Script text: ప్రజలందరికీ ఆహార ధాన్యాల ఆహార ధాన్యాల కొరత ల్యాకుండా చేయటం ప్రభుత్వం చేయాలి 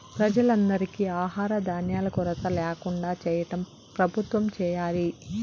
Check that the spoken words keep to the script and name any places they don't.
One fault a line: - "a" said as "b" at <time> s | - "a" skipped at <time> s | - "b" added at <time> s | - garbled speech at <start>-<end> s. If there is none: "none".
- "ఆహార ధాన్యాల" skipped at 2.1 s